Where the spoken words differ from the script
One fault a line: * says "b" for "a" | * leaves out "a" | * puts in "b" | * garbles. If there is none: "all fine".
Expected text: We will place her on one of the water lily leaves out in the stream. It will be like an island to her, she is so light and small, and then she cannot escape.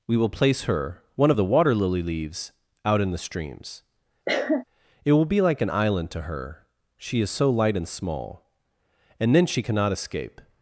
* leaves out "on"
* says "streams" for "stream"